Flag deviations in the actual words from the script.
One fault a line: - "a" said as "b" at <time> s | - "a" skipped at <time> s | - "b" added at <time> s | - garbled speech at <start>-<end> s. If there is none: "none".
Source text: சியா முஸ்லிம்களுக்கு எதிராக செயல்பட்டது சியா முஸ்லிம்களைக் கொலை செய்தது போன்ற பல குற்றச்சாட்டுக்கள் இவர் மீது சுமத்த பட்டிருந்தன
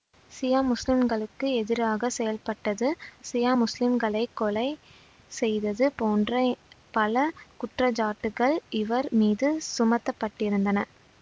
none